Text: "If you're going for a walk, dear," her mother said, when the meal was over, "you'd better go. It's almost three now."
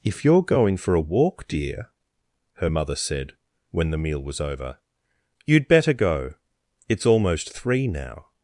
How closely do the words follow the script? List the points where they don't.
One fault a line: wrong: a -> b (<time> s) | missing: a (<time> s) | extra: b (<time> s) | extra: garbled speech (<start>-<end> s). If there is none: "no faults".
no faults